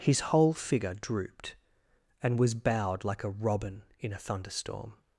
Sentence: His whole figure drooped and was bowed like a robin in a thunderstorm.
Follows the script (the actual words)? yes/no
yes